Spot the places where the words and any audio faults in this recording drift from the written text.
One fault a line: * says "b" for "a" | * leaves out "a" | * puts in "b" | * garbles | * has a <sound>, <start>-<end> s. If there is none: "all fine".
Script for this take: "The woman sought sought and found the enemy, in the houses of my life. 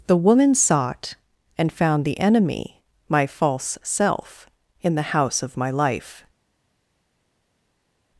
* leaves out "sought"
* puts in "my false self"
* says "house" for "houses"